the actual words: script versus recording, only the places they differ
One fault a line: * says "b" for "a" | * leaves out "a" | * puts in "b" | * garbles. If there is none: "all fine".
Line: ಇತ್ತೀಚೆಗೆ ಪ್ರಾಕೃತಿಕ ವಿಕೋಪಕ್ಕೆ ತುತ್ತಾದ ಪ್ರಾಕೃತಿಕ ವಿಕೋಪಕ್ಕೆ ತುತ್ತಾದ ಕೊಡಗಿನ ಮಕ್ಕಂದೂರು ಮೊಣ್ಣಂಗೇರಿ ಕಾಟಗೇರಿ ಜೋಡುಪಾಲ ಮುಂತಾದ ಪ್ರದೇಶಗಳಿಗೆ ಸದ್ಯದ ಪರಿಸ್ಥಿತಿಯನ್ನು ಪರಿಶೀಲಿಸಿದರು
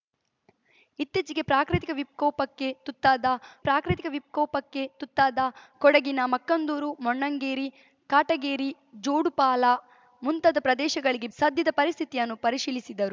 all fine